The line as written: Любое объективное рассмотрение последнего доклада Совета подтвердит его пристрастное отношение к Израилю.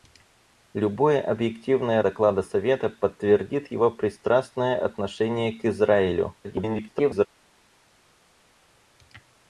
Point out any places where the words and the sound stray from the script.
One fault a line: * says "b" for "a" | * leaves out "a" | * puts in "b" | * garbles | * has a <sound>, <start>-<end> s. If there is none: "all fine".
* leaves out "рассмотрение последнего"
* garbles